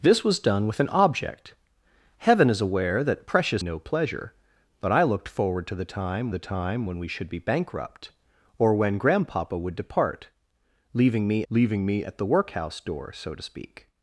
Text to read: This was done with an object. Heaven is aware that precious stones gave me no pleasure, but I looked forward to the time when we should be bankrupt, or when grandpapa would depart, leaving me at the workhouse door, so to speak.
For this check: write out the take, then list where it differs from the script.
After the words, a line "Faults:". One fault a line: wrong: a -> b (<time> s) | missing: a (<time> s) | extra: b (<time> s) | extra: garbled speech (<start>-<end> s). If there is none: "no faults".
This was done with an object. Heaven is aware that precious no pleasure, but I looked forward to the time the time when we should be bankrupt, or when grandpapa would depart, leaving me leaving me at the workhouse door, so to speak.
Faults:
missing: stones gave me (3.6 s)
extra: the time (6.3 s)
extra: leaving me (11.5 s)